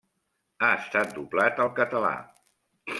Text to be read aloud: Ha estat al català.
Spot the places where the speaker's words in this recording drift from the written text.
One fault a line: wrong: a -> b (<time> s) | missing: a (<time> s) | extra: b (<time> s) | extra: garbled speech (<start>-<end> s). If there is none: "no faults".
extra: doblat (1.2 s)